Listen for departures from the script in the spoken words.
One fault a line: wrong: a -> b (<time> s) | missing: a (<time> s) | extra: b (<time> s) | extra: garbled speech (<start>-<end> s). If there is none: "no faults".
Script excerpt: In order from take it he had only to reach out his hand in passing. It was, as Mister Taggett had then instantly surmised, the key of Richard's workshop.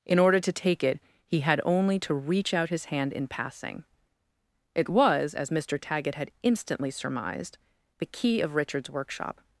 wrong: from -> to (0.4 s)
missing: then (6.3 s)